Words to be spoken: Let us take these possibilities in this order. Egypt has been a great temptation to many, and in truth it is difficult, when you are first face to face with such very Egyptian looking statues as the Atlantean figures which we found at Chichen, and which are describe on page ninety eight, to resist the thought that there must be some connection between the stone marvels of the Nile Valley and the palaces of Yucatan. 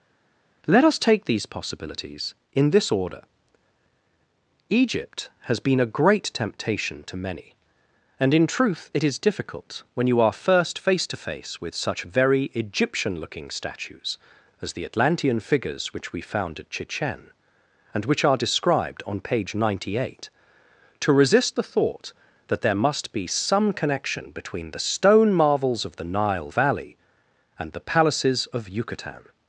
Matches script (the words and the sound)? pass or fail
fail